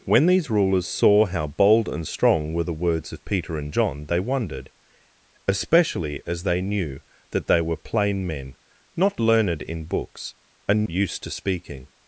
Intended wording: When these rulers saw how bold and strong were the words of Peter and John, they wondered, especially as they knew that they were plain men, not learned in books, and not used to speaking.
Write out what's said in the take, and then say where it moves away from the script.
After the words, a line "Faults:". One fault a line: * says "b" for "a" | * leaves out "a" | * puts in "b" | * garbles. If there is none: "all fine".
When these rulers saw how bold and strong were the words of Peter and John, they wondered, especially as they knew that they were plain men, not learned in books, and used to speaking.
Faults:
* leaves out "not"